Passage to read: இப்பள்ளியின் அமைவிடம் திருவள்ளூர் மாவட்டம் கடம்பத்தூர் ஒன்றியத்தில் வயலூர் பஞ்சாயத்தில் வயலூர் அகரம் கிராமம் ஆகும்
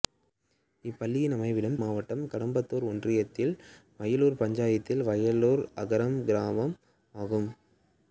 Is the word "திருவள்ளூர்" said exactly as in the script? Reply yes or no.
no